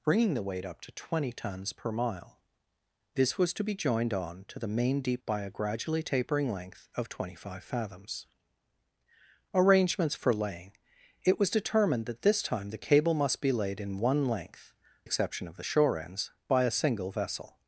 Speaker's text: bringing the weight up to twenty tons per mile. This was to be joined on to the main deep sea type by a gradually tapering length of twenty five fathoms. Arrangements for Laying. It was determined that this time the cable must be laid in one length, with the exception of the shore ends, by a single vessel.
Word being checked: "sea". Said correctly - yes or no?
no